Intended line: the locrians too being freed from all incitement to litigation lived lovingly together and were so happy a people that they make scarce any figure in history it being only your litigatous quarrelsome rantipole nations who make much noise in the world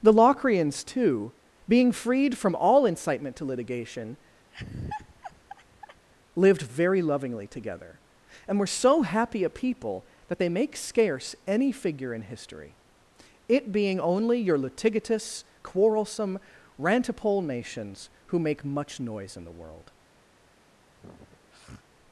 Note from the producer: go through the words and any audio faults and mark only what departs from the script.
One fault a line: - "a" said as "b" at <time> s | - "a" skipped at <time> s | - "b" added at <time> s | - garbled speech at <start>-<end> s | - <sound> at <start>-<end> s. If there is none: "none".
- laugh at 4.5-6.1 s
- "very" added at 6.6 s
- sniff at 20.9-21.9 s